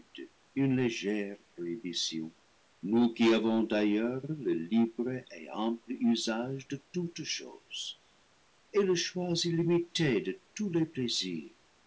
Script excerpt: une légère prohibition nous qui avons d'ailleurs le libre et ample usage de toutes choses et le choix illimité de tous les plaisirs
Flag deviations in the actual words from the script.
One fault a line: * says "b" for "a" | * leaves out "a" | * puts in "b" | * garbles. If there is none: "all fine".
all fine